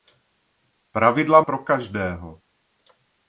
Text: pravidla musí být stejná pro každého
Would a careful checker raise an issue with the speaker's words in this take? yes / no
yes